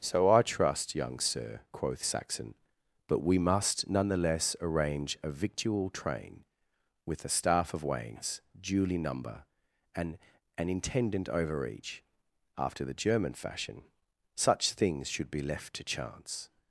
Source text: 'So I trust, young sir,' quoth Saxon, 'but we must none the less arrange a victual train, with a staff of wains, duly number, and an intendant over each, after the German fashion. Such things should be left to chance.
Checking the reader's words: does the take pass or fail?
pass